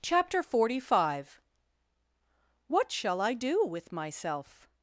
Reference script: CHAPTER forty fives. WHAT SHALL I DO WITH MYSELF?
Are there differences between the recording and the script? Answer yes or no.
yes